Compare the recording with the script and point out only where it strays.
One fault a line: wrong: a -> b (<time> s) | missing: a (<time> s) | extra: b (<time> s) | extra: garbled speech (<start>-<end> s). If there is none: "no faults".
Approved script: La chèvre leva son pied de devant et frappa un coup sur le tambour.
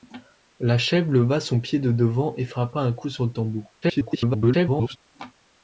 extra: garbled speech (3.8-5.0 s)